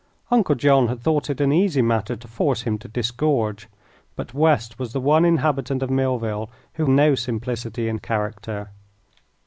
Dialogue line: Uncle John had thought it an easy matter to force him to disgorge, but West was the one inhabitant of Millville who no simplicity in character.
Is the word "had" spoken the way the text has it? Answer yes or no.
yes